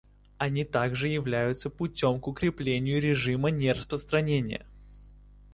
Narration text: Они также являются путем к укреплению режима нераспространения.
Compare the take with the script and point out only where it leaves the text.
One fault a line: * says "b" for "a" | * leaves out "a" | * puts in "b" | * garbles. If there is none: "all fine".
all fine